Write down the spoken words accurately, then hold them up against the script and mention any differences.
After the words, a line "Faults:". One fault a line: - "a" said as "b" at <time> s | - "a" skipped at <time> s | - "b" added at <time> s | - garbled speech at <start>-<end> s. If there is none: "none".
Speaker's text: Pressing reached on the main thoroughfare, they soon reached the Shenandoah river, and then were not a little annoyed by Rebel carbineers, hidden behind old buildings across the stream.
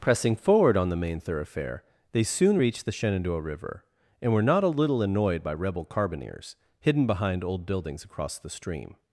Pressing forward on the main thoroughfare, they soon reached the Shenandoah river, and were not a little annoyed by Rebel carbineers, hidden behind old buildings across the stream.
Faults:
- "reached" said as "forward" at 0.3 s
- "then" skipped at 4.3 s